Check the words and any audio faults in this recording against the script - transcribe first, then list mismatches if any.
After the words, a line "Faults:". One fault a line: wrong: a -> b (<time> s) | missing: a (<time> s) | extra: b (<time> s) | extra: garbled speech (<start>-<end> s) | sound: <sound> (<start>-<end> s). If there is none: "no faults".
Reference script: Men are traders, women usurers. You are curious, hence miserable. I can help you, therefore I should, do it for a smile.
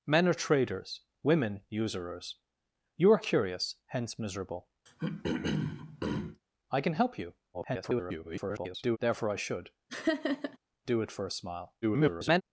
Men are traders, women usurers. You are curious, hence miserable. I can help you, [garbled] therefore I should, do it for a smile. [garbled]
Faults:
sound: throat clearing (4.9-6.4 s)
extra: garbled speech (7.5-9.0 s)
sound: laugh (9.9-10.6 s)
extra: garbled speech (11.8-12.4 s)